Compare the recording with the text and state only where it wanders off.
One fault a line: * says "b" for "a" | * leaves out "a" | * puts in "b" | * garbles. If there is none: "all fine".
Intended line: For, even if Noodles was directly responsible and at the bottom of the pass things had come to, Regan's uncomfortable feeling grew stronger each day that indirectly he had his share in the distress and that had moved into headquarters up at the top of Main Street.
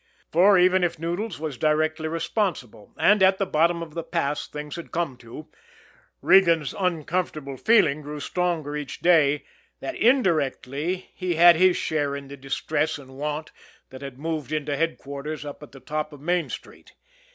* puts in "want"